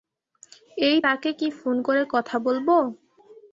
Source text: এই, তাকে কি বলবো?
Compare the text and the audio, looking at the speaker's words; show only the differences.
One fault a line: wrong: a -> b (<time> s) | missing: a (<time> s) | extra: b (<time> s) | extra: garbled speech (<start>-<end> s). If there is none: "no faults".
extra: ফোন করে কথা (1.6 s)